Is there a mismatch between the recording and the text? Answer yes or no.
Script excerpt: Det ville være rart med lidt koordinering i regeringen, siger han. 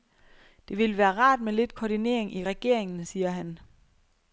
no